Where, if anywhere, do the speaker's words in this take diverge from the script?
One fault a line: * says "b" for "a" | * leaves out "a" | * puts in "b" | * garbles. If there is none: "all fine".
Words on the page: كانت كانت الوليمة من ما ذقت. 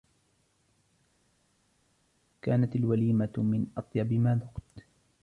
* leaves out "كانت"
* puts in "أطيب"